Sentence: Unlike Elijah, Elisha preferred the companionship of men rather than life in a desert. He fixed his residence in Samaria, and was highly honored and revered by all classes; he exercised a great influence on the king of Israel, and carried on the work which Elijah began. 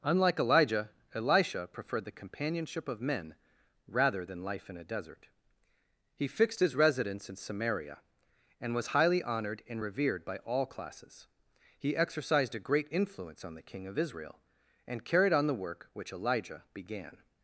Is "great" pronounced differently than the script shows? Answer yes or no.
no